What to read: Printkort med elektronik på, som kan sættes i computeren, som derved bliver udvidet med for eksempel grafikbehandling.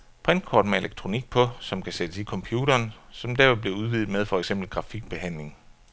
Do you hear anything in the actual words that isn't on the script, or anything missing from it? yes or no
no